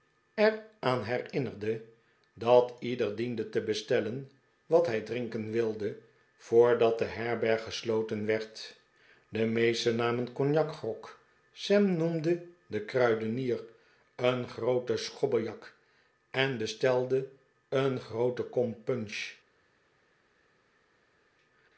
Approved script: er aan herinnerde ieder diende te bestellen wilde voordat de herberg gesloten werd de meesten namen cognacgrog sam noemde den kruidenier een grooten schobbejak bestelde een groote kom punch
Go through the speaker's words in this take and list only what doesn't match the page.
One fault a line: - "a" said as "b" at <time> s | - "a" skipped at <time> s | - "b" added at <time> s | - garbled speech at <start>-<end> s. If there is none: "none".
- "dat" added at 2.3 s
- "wat hij drinken" added at 4.7 s
- "en" added at 16.3 s